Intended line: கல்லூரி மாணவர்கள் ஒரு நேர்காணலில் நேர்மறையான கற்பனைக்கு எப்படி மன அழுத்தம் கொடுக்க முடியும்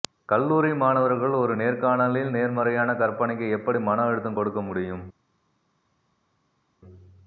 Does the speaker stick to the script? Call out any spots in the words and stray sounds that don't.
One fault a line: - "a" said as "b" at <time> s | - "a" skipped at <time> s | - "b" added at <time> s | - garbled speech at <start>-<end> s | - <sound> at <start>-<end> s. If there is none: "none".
none